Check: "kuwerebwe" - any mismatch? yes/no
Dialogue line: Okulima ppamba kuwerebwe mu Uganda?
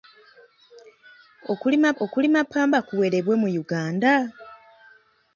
no